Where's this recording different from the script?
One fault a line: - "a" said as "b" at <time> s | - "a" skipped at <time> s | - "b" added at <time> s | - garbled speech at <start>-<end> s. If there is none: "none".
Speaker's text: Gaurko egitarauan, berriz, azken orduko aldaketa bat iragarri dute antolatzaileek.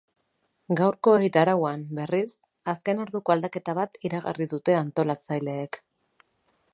none